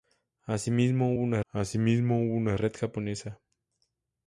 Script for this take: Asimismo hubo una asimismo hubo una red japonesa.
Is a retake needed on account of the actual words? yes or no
no